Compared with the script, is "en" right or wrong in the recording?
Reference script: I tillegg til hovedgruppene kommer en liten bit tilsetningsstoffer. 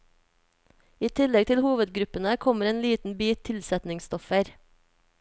right